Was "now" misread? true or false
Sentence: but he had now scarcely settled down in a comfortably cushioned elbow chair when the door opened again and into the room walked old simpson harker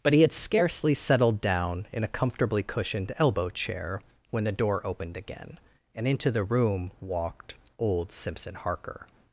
true